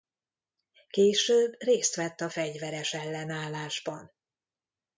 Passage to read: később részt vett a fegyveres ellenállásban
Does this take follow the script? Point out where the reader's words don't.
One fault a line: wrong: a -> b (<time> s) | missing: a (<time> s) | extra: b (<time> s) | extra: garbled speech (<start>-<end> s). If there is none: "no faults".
no faults